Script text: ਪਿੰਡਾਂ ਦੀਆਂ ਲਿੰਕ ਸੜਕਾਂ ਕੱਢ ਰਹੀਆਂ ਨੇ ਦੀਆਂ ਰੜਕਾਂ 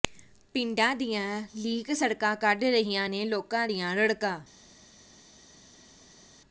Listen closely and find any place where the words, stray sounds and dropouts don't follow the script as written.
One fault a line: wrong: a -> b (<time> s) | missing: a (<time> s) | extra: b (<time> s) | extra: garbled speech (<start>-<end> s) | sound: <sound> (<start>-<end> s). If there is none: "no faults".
extra: ਲੋਕਾਂ (3.3 s)